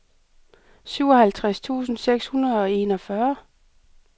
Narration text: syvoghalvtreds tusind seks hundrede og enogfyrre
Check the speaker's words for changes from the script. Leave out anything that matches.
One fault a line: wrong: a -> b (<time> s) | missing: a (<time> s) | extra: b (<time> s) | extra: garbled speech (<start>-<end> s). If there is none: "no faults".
no faults